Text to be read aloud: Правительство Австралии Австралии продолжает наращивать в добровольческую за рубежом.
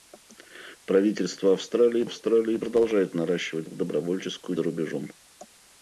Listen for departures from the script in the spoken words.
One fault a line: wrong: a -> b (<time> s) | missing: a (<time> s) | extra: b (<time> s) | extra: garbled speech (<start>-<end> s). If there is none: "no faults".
no faults